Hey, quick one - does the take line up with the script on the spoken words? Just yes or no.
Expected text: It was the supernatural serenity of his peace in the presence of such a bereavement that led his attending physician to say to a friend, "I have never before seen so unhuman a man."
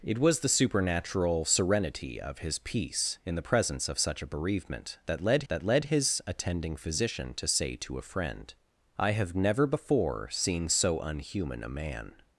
no